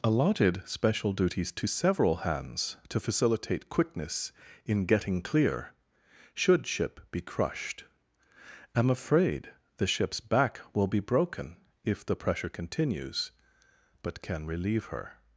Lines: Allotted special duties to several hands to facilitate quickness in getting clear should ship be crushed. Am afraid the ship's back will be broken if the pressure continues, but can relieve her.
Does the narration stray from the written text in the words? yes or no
no